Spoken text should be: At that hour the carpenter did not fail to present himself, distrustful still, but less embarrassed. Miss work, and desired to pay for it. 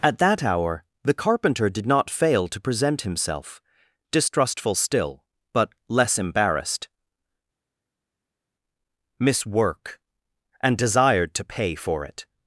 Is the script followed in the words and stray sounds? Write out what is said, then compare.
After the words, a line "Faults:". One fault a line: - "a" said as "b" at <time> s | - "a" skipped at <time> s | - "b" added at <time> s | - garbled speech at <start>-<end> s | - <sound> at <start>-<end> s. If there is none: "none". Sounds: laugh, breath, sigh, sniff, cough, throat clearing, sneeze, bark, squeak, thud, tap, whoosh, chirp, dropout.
At that hour the carpenter did not fail to present himself, distrustful still, but less embarrassed. Miss work, and desired to pay for it.
Faults:
none